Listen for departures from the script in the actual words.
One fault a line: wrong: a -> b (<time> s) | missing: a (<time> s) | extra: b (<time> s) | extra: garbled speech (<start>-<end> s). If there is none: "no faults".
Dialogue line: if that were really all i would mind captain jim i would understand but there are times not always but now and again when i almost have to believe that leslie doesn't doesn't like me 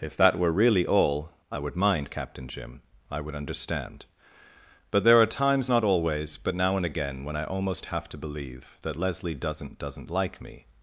no faults